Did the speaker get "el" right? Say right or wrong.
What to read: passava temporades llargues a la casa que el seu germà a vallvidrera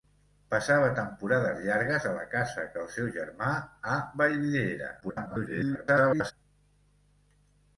right